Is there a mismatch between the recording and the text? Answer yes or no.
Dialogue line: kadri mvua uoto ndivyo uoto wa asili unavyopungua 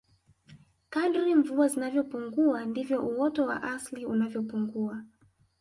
yes